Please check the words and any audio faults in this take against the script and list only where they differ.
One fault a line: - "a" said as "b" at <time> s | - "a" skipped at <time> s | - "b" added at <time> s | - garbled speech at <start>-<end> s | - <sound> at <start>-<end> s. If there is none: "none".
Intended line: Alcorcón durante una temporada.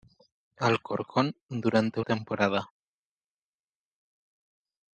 - "una" skipped at 2.0 s